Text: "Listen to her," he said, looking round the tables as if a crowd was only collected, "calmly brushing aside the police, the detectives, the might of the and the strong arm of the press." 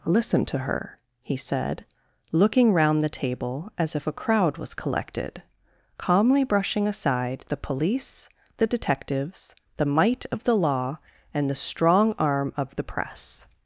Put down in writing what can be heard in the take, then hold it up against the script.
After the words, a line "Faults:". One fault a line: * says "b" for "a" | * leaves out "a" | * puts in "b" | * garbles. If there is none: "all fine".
"Listen to her," he said, looking round the table as if a crowd was collected, "calmly brushing aside the police, the detectives, the might of the law and the strong arm of the press."
Faults:
* says "table" for "tables"
* leaves out "only"
* puts in "law"